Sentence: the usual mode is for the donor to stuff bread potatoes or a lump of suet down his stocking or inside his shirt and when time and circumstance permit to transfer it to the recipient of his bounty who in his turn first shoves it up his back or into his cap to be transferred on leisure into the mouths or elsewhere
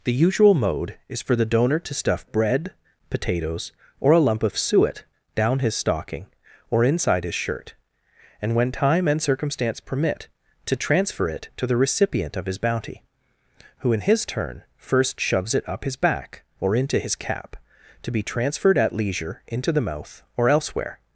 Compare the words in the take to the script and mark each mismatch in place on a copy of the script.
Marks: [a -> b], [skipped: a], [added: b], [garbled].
the usual mode is for the donor to stuff bread potatoes or a lump of suet down his stocking or inside his shirt and when time and circumstance permit to transfer it to the recipient of his bounty who in his turn first shoves it up his back or into his cap to be transferred [on -> at] leisure into the [mouths -> mouth] or elsewhere